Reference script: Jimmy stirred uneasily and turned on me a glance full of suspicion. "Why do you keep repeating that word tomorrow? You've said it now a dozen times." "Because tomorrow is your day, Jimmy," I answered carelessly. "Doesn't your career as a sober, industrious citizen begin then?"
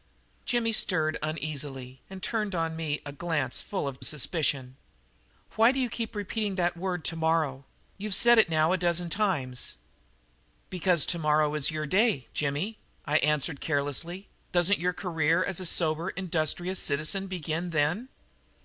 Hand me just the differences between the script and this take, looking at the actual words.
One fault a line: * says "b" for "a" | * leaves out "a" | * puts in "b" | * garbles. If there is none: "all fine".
all fine